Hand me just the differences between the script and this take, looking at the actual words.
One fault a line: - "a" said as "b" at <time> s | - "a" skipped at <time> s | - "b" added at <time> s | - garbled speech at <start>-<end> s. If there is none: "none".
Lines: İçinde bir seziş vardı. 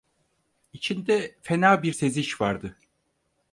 - "fena" added at 1.4 s